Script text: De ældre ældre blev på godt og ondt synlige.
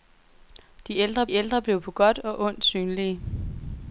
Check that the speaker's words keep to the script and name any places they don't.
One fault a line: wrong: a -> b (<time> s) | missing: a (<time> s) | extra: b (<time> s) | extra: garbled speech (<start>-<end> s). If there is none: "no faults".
no faults